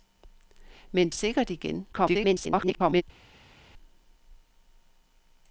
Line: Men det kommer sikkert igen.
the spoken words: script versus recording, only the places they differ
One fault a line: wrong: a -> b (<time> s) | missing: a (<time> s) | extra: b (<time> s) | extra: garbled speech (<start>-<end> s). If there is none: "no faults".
missing: det kommer (1.1 s)
extra: garbled speech (1.9-3.0 s)